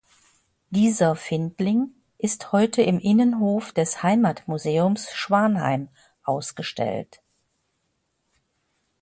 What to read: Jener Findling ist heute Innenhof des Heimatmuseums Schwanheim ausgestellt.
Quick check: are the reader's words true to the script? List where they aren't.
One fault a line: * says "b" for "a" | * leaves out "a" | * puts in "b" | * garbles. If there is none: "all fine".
* says "Dieser" for "Jener"
* puts in "im"